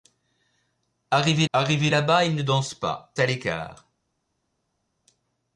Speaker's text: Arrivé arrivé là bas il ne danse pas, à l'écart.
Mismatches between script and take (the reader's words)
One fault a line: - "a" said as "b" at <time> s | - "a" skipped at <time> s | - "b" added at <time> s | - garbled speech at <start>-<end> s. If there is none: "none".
none